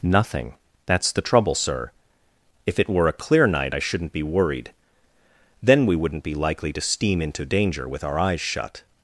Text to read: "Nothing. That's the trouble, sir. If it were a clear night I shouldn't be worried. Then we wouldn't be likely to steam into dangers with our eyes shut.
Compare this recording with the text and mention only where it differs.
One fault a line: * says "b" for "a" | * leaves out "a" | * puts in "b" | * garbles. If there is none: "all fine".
* says "danger" for "dangers"